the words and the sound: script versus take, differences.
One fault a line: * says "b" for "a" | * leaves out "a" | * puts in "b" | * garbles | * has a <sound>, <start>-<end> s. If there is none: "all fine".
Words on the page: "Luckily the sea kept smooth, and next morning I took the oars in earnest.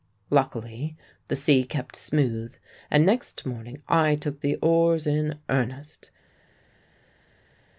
all fine